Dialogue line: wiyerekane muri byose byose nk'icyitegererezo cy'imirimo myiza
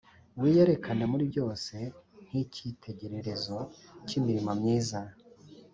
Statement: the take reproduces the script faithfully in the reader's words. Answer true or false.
false